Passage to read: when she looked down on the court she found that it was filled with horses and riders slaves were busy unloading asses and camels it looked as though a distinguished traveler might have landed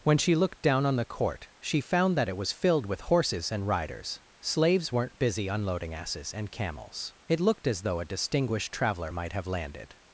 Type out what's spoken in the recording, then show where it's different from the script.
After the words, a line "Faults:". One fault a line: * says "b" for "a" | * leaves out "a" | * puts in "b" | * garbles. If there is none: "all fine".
when she looked down on the court she found that it was filled with horses and riders slaves weren't busy unloading asses and camels it looked as though a distinguished traveler might have landed
Faults:
* says "weren't" for "were"